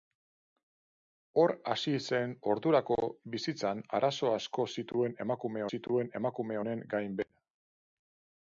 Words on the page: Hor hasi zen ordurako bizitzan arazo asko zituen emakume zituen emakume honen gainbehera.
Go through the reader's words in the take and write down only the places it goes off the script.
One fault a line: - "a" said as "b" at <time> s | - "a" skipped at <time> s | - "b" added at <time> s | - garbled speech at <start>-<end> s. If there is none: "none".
none